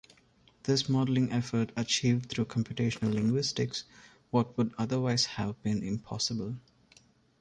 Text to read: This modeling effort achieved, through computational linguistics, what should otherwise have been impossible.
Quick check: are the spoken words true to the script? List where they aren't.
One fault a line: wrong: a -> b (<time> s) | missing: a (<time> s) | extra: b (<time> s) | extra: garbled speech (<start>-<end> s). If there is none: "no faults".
wrong: should -> would (4.6 s)